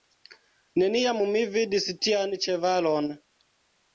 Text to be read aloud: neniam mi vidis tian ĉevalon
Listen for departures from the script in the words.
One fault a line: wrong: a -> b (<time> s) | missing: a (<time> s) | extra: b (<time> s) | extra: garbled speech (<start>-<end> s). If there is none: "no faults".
no faults